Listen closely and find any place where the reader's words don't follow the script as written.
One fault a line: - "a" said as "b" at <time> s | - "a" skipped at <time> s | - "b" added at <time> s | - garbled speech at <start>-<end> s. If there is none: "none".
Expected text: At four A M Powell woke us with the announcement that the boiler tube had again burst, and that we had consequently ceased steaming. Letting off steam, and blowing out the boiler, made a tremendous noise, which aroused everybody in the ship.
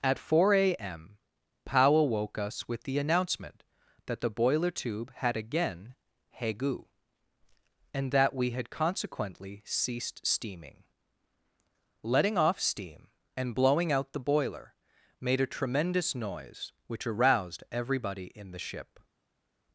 - "burst" said as "hegu" at 6.4 s